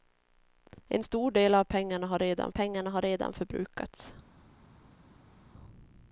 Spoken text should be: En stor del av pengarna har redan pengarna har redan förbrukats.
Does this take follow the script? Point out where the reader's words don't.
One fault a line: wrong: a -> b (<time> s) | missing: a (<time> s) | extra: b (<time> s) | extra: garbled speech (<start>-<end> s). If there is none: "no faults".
no faults